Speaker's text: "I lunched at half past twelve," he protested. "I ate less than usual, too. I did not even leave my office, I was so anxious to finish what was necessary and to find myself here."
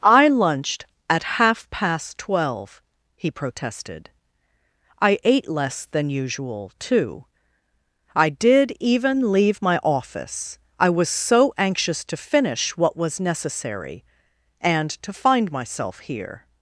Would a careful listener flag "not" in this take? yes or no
yes